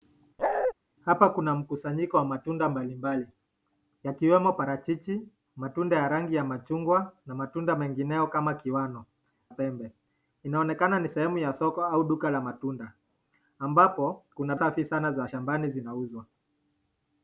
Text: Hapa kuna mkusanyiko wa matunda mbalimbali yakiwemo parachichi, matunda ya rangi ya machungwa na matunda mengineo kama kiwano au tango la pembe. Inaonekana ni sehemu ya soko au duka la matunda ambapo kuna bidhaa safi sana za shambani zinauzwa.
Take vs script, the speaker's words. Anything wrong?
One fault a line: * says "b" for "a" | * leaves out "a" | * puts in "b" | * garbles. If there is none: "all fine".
* leaves out "au tango la"
* leaves out "bidhaa"